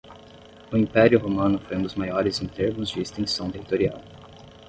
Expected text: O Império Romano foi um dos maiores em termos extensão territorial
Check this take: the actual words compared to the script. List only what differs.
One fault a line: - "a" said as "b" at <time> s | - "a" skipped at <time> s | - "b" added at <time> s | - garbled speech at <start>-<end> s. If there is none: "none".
- "de" added at 2.9 s